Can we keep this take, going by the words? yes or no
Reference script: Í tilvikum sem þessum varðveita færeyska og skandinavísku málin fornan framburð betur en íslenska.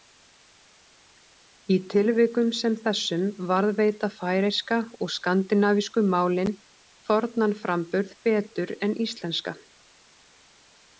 yes